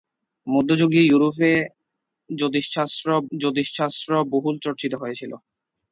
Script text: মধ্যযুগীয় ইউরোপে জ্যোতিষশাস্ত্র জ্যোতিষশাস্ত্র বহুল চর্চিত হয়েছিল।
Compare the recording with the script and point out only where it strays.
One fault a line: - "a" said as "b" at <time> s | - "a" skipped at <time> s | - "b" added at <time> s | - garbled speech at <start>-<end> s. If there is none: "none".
none